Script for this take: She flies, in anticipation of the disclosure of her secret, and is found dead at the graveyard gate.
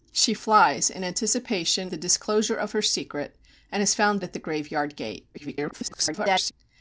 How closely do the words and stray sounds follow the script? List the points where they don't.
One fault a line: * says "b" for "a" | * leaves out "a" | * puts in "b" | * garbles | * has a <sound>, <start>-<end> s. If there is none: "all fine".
* leaves out "of"
* leaves out "dead"
* garbles